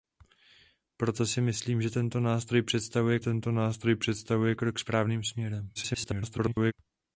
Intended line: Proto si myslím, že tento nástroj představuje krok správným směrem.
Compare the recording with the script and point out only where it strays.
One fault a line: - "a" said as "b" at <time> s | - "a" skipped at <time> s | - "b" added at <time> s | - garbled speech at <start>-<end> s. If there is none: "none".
- "tento nástroj představuje" added at 3.2 s
- garbled speech at 5.8-6.7 s